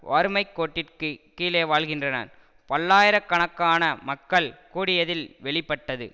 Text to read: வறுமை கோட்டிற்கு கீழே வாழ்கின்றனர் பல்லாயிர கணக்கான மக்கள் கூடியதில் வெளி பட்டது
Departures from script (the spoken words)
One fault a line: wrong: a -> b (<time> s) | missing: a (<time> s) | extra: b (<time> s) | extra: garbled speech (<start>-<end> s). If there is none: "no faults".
no faults